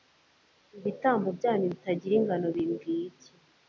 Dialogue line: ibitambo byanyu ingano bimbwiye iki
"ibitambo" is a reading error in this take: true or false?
false